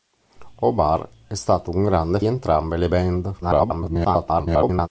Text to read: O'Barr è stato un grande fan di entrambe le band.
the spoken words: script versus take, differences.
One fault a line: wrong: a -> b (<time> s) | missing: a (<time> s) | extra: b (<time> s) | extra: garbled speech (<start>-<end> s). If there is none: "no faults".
missing: fan di (2.2 s)
extra: garbled speech (3.4-4.9 s)